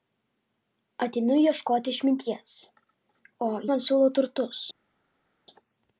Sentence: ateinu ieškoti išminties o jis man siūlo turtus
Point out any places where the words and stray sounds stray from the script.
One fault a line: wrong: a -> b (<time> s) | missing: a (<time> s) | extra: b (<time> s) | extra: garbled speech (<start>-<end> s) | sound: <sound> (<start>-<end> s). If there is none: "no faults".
missing: jis (3.5 s)